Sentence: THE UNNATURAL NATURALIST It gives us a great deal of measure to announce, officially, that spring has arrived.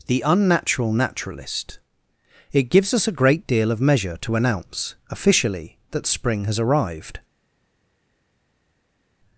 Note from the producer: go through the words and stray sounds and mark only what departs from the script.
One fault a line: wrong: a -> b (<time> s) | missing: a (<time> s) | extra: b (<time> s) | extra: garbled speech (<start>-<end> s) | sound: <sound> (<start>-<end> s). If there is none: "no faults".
no faults